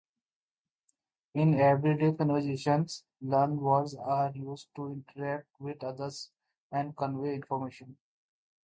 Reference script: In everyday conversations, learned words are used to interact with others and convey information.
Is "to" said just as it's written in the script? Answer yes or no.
yes